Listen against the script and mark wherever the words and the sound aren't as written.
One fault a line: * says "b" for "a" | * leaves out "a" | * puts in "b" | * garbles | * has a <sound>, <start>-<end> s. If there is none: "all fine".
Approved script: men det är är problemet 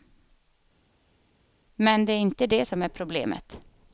* puts in "inte det som"